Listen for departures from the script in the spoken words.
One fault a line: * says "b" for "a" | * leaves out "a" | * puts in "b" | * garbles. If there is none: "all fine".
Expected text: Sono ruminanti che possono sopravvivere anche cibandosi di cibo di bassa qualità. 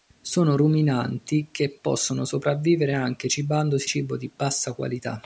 * leaves out "di"